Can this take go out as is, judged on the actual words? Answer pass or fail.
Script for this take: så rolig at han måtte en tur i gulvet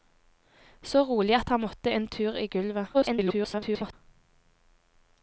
fail